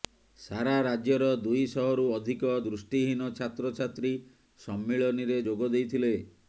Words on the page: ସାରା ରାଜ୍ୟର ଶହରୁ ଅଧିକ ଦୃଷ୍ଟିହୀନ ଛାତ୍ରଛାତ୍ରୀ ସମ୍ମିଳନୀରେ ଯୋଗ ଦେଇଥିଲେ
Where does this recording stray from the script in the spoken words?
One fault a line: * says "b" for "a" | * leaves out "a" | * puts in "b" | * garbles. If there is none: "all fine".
* puts in "ଦୁଇ"